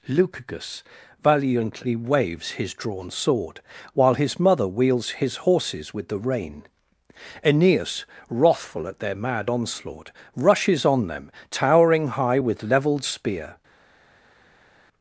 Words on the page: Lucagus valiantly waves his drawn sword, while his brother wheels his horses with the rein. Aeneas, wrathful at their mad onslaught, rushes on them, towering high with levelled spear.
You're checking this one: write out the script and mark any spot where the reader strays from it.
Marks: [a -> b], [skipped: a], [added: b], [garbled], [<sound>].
Lucagus valiantly waves his drawn sword, while his [brother -> mother] wheels his horses with the rein. Aeneas, wrathful at their mad onslaught, rushes on them, towering high with levelled spear.